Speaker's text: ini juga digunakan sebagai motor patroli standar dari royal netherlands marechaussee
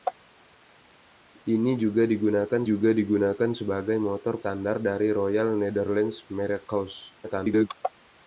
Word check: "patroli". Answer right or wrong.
wrong